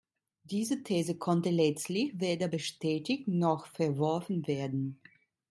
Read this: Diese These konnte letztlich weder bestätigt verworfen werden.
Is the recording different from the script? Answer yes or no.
yes